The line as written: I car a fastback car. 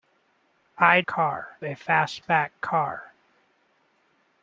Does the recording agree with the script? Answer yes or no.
yes